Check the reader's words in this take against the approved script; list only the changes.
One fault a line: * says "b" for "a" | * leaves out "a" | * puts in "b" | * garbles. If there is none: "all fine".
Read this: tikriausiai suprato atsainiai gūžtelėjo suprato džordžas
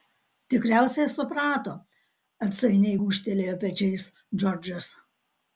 * says "pečiais" for "suprato"